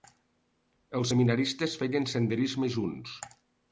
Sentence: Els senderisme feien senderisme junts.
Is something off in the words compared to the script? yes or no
yes